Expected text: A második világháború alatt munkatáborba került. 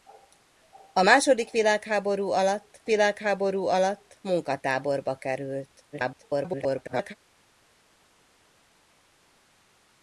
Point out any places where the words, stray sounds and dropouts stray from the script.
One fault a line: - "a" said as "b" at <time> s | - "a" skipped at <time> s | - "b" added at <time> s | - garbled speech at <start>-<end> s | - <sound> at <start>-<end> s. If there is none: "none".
- "világháború alatt" added at 2.8 s
- garbled speech at 5.9-7.1 s